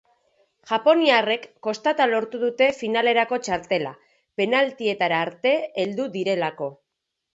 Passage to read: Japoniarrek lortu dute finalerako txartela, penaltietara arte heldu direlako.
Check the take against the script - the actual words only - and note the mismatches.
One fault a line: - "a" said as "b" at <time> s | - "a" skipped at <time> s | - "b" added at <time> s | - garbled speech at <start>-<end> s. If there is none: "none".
- "kostata" added at 1.7 s